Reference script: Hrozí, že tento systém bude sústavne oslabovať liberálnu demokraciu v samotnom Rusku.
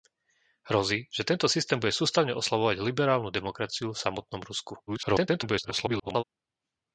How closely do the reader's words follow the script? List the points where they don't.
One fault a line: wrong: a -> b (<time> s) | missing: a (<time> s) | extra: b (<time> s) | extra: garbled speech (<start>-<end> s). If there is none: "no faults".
extra: garbled speech (4.9-6.2 s)